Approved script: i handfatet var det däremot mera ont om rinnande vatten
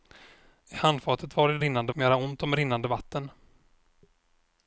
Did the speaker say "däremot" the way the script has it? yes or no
no